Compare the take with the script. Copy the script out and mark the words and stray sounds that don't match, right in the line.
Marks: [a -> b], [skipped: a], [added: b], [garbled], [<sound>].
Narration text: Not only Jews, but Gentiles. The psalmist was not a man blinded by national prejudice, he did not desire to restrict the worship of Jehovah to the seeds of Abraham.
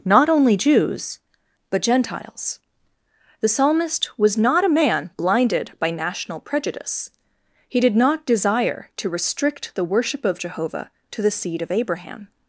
Not only Jews, but Gentiles. The psalmist was not a man blinded by national prejudice, he did not desire to restrict the worship of Jehovah to the [seeds -> seed] of Abraham.